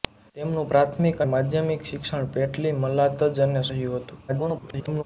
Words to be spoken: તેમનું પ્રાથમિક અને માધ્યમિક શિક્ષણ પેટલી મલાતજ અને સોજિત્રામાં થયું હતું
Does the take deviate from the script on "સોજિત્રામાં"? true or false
true